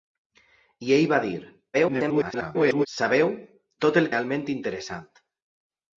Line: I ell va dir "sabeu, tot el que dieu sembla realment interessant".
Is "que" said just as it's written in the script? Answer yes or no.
no